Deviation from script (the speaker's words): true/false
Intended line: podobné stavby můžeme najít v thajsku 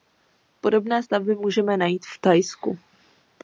false